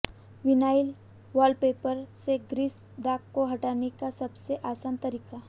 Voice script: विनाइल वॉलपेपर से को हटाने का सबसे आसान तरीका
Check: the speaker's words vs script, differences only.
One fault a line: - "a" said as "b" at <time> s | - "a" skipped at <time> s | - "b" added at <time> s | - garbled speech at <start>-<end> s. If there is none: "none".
- "ग्रीस दाग" added at 2.5 s